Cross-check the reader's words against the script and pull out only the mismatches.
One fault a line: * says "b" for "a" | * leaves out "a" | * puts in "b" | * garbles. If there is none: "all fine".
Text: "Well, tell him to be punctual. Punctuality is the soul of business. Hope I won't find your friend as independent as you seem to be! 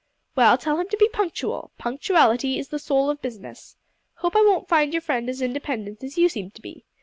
all fine